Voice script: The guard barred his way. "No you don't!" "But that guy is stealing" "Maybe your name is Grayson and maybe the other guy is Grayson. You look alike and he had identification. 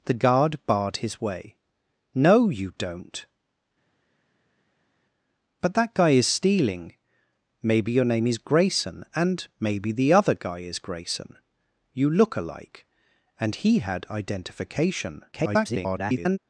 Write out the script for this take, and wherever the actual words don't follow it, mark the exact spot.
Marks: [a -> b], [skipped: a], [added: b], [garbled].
The guard barred his way. "No you don't!" "But that guy is stealing" "Maybe your name is Grayson and maybe the other guy is Grayson. You look alike and he had identification. [garbled]